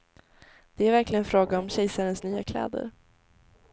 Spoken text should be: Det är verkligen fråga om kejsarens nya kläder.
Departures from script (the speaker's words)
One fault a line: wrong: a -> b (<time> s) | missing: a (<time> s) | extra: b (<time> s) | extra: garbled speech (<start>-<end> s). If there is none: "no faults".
no faults